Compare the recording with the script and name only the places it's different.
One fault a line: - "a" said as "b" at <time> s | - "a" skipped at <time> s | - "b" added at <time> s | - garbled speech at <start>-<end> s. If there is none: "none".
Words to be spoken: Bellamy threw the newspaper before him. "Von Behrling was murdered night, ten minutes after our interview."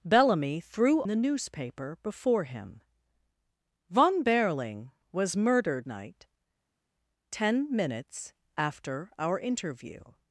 none